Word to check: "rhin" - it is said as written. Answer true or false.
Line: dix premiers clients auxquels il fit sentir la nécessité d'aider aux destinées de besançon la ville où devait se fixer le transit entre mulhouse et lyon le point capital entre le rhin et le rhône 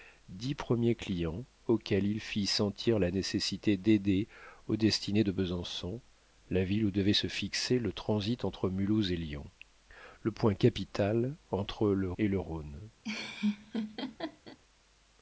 false